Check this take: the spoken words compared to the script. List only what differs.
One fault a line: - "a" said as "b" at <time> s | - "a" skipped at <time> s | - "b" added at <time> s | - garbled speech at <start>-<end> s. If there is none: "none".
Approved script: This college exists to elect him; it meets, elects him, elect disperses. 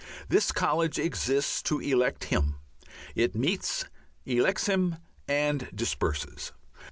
- "elect" said as "and" at 5.3 s